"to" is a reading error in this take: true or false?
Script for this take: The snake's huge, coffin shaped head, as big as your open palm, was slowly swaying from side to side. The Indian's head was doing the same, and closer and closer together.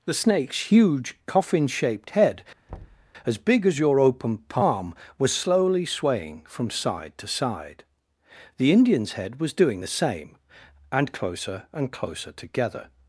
false